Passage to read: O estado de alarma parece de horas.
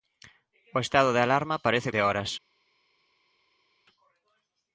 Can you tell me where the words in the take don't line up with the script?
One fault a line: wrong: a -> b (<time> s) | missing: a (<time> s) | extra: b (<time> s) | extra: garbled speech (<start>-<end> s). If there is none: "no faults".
no faults